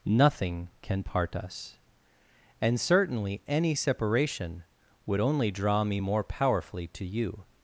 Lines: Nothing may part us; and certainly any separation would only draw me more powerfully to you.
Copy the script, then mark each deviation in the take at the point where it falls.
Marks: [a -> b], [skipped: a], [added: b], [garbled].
Nothing [may -> can] part us; and certainly any separation would only draw me more powerfully to you.